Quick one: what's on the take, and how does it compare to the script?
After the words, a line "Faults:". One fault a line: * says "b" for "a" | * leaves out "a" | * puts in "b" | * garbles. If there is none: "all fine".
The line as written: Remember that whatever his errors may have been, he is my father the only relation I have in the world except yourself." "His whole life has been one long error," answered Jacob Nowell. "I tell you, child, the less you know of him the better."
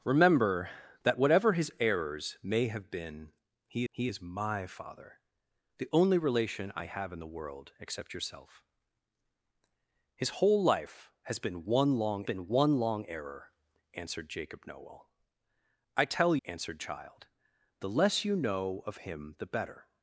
Remember that whatever his errors may have been, he he is my father the only relation I have in the world except yourself." "His whole life has been one long been one long error," answered Jacob Nowell. "I tell answered, child, the less you know of him the better."
Faults:
* puts in "he"
* puts in "been one long"
* says "answered" for "you"